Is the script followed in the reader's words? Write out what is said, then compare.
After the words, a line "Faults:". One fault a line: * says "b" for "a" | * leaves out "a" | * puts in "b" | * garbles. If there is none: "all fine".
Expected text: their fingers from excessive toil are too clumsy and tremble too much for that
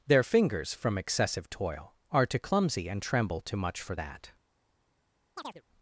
their fingers from excessive toil are too clumsy and tremble too much for that
Faults:
all fine